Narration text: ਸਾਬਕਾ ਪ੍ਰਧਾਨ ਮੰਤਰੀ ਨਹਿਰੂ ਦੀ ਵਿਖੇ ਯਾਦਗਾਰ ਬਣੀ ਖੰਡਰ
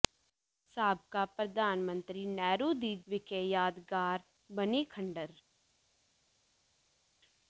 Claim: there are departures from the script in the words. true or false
false